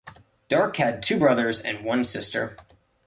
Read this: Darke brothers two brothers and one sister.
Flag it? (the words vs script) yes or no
yes